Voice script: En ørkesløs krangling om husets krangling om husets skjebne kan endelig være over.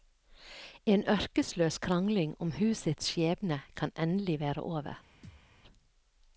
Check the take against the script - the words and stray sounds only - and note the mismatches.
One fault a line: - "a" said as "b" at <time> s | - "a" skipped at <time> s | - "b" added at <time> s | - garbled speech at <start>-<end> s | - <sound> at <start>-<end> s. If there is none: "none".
- "krangling om husets" skipped at 3.0 s
- thud at 5.2-5.5 s